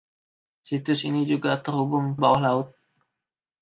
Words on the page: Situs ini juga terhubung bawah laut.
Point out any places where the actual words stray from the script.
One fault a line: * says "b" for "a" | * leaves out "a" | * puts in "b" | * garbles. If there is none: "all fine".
all fine